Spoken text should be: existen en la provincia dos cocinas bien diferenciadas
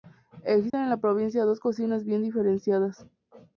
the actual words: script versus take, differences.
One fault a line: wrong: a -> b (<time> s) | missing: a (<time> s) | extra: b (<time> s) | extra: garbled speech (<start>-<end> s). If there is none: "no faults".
no faults